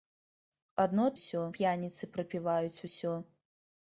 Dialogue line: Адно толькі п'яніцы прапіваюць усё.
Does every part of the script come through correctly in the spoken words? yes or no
no